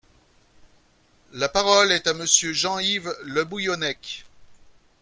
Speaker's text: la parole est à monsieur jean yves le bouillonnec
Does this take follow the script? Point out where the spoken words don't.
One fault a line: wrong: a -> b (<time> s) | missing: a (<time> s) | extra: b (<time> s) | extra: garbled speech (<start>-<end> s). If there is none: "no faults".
no faults